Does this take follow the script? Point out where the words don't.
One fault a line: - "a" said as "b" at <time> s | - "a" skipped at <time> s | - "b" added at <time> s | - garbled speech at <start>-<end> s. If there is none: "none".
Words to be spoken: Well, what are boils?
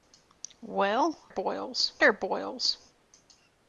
- "what" said as "boils" at 1.3 s